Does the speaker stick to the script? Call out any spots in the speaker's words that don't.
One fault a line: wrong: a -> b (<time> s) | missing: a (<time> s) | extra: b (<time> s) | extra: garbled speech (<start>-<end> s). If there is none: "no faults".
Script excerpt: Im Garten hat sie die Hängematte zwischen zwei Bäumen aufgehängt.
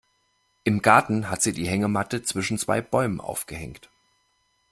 no faults